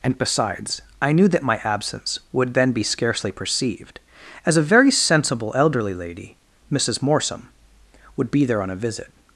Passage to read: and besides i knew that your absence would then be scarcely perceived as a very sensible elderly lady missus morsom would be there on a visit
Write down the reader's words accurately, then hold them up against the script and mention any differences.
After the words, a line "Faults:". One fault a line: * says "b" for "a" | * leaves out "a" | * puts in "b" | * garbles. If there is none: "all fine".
and besides i knew that my absence would then be scarcely perceived as a very sensible elderly lady missus morsom would be there on a visit
Faults:
* says "my" for "your"